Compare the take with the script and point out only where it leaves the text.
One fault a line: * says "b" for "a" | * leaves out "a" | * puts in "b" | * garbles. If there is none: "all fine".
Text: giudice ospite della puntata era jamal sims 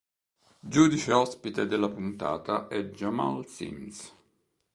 * says "è" for "era"